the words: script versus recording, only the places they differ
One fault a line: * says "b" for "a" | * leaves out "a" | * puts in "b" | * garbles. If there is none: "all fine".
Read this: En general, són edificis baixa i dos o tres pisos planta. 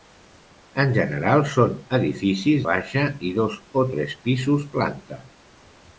all fine